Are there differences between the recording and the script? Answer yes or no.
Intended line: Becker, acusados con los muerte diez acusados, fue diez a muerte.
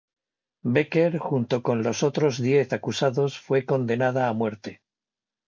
yes